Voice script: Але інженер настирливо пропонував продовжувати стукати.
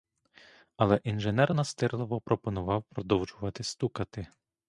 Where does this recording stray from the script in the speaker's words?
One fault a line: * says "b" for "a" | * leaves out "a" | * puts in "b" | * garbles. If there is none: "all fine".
all fine